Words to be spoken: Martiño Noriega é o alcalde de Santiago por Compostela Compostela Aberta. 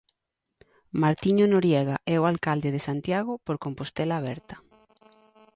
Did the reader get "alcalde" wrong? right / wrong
right